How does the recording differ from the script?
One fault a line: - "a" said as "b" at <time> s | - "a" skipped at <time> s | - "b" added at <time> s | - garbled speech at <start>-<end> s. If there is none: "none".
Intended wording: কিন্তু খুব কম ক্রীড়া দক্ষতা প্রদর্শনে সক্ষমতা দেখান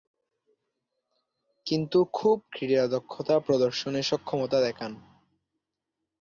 - "কম" skipped at 2.4 s